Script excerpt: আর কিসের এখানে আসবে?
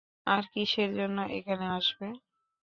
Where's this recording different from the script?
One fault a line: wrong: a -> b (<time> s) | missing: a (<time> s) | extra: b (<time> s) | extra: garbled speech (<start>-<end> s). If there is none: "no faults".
extra: জন্য (1.0 s)